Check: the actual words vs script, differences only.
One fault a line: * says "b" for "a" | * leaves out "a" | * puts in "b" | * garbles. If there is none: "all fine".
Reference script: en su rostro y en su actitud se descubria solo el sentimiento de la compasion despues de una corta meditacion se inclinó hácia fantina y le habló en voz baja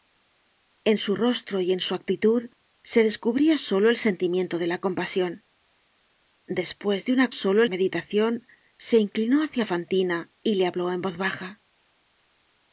* says "solo" for "corta"